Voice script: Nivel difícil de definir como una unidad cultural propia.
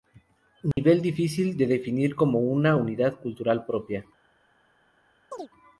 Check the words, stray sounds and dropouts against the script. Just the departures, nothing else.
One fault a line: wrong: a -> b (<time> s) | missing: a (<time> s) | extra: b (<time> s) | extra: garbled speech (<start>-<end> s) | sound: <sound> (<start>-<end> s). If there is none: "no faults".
sound: dropout (0.7-0.8 s)
sound: chirp (5.3-5.5 s)